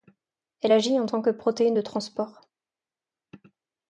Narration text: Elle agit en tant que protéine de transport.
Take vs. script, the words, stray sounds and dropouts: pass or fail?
pass